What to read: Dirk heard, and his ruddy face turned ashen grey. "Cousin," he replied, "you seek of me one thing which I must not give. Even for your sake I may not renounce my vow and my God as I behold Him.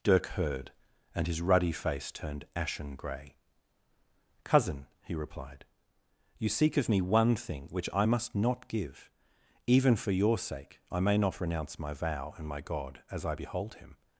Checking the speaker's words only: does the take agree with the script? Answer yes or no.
yes